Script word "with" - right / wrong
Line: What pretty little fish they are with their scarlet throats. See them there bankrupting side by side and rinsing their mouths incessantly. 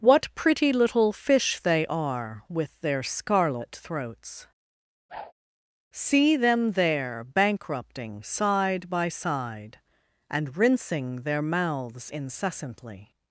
right